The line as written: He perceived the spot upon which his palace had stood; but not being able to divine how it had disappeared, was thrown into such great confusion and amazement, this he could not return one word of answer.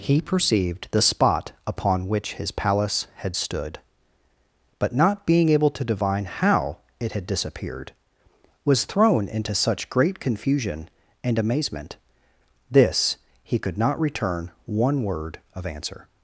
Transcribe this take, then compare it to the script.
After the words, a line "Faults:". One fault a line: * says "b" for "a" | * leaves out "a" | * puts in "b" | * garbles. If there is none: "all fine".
He perceived the spot upon which his palace had stood; but not being able to divine how it had disappeared, was thrown into such great confusion and amazement, this he could not return one word of answer.
Faults:
all fine